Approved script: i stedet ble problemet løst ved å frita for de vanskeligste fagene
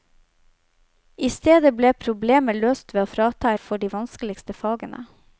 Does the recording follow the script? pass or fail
pass